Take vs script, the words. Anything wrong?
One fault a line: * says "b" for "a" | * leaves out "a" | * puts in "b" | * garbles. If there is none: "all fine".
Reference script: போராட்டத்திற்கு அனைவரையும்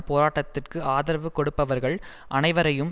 * puts in "ஆதரவு கொடுப்பவர்கள்"